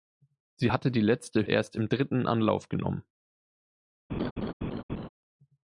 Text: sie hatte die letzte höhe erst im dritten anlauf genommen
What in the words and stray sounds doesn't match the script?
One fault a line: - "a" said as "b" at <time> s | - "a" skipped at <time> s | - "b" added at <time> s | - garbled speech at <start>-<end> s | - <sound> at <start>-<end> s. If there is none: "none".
- "höhe" skipped at 1.5 s
- laugh at 4.1-5.1 s